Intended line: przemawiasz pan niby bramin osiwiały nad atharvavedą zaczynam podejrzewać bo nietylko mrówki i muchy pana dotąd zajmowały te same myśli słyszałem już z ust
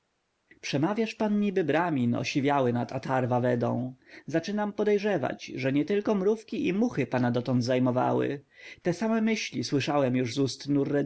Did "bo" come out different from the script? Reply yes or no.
yes